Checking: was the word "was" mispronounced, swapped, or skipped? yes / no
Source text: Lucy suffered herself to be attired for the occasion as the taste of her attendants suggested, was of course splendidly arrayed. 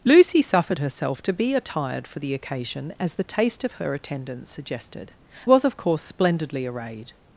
no